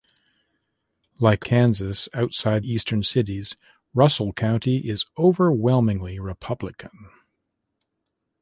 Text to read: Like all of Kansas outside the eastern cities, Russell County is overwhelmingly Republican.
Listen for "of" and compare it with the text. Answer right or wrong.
wrong